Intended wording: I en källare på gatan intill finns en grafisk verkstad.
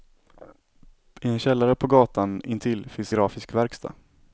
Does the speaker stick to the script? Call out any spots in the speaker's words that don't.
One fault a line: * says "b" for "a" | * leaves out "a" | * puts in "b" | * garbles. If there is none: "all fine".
* leaves out "en"